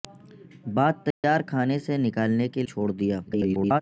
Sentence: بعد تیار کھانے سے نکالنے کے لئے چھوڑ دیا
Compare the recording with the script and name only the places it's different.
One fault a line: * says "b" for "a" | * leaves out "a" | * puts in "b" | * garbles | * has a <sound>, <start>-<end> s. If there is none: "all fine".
* has a dropout, 1.1-1.2 s
* leaves out "لئے"
* garbles